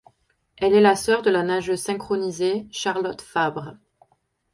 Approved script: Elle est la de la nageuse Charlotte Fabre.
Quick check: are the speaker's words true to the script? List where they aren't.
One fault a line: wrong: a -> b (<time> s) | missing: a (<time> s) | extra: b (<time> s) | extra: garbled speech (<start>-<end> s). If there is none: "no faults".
extra: sœur (0.9 s)
extra: synchronisée (1.8 s)